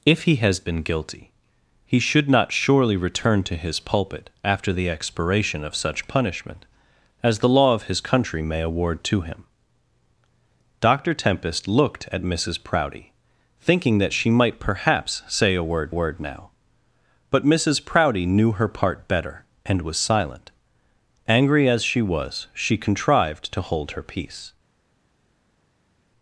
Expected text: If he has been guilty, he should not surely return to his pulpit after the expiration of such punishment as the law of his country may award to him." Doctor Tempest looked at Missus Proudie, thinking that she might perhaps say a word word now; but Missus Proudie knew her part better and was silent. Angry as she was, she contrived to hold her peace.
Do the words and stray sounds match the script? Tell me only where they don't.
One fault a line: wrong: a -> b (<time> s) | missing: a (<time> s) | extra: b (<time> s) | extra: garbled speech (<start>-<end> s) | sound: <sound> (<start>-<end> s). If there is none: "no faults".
no faults